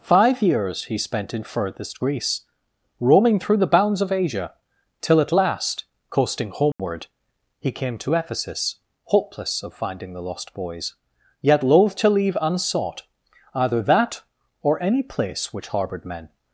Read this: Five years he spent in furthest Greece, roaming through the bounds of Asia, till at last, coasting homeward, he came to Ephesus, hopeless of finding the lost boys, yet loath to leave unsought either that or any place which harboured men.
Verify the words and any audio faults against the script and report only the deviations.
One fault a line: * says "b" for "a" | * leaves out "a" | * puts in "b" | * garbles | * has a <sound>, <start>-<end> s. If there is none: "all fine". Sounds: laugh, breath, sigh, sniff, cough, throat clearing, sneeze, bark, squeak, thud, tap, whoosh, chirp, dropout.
* has a dropout, 6.7-6.8 s